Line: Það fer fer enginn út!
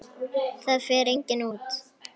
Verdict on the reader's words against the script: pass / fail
fail